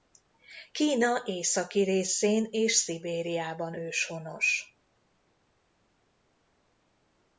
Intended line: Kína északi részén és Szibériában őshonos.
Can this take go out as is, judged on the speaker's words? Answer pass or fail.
pass